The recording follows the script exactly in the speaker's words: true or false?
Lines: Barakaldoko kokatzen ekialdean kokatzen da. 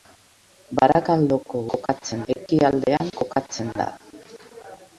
true